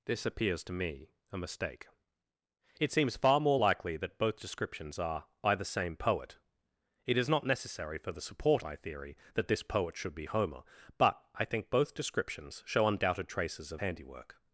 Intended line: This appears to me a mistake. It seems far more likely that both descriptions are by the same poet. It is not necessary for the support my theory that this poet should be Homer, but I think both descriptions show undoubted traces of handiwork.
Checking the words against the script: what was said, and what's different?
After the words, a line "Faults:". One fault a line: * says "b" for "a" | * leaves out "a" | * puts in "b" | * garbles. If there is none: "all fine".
This appears to me a mistake. It seems far more likely that both descriptions are by the same poet. It is not necessary for the support my theory that this poet should be Homer, but I think both descriptions show undoubted traces of handiwork.
Faults:
all fine